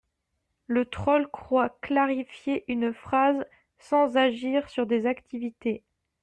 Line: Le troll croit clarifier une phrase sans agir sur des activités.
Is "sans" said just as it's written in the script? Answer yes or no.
yes